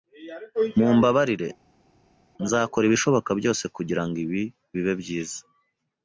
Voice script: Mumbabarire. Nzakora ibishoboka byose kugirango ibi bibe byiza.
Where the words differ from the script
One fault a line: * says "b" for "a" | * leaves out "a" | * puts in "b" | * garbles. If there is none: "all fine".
all fine